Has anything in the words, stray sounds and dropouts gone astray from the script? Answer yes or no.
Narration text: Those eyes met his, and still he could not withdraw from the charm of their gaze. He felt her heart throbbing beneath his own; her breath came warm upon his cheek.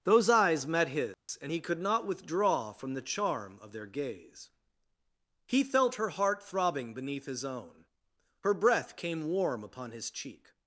yes